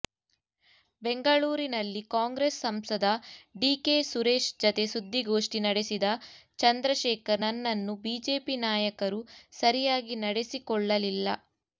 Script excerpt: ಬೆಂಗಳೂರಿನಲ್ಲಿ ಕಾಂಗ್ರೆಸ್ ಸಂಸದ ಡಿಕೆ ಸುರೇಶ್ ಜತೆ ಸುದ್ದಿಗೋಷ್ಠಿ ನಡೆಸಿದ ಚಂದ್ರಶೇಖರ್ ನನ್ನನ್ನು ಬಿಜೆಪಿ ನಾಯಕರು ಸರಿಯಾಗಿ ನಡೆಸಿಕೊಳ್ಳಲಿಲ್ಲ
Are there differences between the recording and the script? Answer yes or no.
no